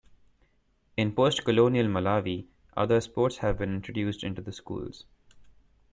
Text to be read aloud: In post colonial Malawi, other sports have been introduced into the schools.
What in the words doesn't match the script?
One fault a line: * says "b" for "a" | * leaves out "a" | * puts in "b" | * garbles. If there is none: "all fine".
all fine